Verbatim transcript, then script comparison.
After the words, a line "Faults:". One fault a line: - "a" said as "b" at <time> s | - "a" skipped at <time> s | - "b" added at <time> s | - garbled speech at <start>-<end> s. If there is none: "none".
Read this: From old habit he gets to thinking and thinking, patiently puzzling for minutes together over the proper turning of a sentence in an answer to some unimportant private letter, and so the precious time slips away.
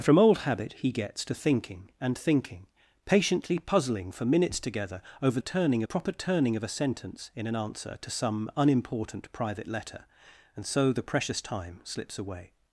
From old habit he gets to thinking and thinking, patiently puzzling for minutes together over turning proper turning of a sentence in an answer to some unimportant private letter, and so the precious time slips away.
Faults:
- "the" said as "turning" at 5.4 s